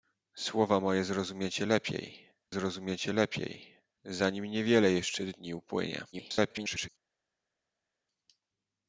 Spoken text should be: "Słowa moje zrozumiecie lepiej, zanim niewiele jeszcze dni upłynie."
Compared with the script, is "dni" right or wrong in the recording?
right